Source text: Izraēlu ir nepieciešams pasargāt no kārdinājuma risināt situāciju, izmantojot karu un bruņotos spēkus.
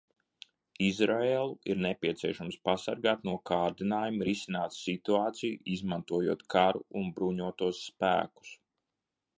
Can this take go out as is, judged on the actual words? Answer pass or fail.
pass